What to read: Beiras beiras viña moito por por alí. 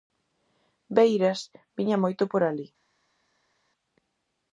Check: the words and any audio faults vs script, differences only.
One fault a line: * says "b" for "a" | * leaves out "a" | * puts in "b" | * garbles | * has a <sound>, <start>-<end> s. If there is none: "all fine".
* leaves out "beiras"
* leaves out "por"